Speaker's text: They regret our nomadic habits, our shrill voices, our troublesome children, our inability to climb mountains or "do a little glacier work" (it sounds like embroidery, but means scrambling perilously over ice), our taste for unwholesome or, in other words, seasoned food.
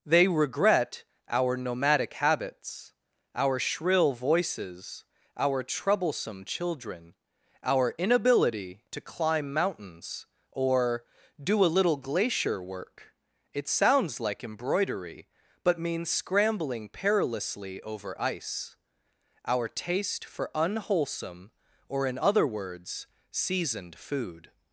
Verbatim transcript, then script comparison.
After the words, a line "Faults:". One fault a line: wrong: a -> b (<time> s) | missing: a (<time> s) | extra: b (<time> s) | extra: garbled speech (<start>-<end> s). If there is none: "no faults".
They regret our nomadic habits, our shrill voices, our troublesome children, our inability to climb mountains or "do a little glacier work" (it sounds like embroidery, but means scrambling perilously over ice), our taste for unwholesome or, in other words, seasoned food.
Faults:
no faults